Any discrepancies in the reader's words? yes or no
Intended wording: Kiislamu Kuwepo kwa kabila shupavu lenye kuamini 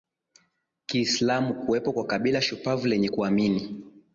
no